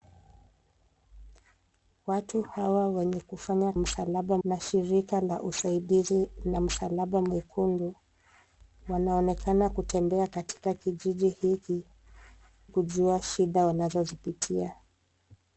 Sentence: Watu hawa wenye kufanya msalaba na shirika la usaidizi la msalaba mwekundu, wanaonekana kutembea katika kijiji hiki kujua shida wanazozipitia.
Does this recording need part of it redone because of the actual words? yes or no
no